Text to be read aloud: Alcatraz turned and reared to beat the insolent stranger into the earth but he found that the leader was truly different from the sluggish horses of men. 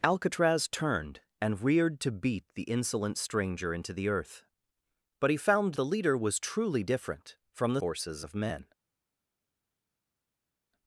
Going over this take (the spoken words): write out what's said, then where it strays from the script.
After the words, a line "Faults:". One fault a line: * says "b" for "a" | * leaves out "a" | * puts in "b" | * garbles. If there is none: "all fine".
Alcatraz turned and reared to beat the insolent stranger into the earth but he found the leader was truly different from the horses of men.
Faults:
* leaves out "that"
* leaves out "sluggish"